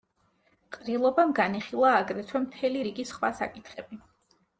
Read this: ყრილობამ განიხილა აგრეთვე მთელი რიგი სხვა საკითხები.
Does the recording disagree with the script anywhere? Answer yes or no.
no